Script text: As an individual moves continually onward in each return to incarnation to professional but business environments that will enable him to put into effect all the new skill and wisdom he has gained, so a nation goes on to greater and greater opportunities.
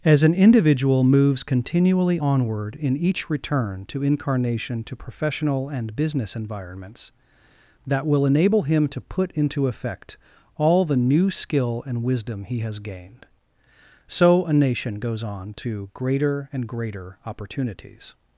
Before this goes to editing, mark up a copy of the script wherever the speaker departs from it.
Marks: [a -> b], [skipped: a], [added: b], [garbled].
As an individual moves continually onward in each return to incarnation to professional [but -> and] business environments that will enable him to put into effect all the new skill and wisdom he has gained, so a nation goes on to greater and greater opportunities.